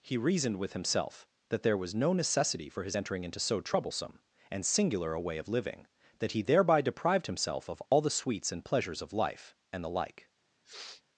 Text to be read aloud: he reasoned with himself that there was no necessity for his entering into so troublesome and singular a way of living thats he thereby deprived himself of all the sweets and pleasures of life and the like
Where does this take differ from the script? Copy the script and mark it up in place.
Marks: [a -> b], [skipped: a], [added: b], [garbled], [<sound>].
he reasoned with himself that there was no necessity for his entering into so troublesome and singular a way of living [thats -> that] he thereby deprived himself of all [dropout] the sweets and pleasures of life and the like [sniff]